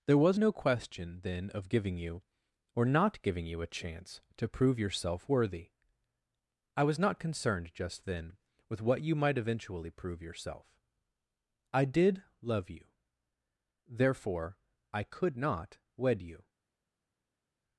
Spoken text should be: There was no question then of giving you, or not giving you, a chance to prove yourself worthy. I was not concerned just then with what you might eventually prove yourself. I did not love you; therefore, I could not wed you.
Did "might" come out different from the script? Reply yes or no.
no